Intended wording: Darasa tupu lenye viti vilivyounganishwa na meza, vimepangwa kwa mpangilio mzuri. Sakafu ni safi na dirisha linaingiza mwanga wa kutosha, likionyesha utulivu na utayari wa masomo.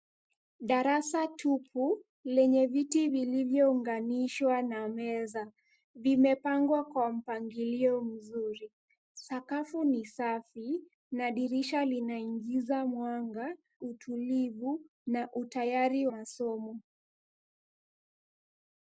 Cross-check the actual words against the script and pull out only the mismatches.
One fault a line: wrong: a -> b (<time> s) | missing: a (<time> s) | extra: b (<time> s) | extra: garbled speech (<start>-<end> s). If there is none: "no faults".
missing: wa kutosha likionyesha (13.6 s)
missing: wa (16.1 s)